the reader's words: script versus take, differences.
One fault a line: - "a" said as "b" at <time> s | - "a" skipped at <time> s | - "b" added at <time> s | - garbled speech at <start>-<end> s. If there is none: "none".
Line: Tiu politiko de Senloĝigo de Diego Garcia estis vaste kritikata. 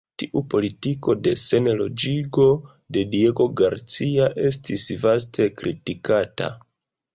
none